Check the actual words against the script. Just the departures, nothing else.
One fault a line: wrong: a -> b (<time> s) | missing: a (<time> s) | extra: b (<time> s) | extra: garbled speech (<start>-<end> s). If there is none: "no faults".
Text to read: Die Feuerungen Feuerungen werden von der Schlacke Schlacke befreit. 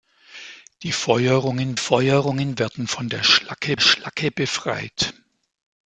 no faults